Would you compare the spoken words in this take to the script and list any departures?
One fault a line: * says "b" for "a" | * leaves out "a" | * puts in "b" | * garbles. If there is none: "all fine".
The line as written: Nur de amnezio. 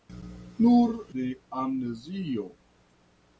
all fine